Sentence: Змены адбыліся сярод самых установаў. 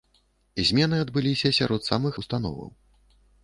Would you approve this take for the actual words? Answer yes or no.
yes